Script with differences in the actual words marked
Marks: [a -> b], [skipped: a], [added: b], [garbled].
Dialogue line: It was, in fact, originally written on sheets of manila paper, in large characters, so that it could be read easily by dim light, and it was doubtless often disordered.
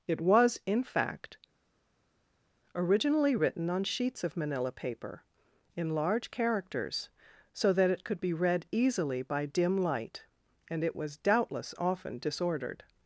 It was, in fact, originally written on sheets of manila paper, in large characters, so that it could be read easily by dim light, and it was doubtless often disordered.